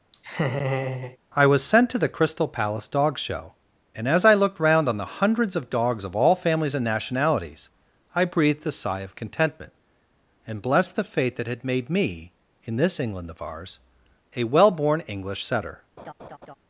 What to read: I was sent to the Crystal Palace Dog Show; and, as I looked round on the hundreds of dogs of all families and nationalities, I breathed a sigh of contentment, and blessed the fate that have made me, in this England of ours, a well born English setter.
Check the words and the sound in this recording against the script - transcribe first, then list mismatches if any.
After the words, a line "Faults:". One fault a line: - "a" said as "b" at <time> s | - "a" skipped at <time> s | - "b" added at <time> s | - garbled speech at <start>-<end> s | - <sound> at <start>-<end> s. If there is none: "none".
I was sent to the Crystal Palace Dog Show; and, as I looked round on the hundreds of dogs of all families and nationalities, I breathed a sigh of contentment, and blessed the fate that had made me, in this England of ours, a well born English setter.
Faults:
- laugh at 0.1-1.2 s
- "have" said as "had" at 11.5 s
- laugh at 16.0-16.6 s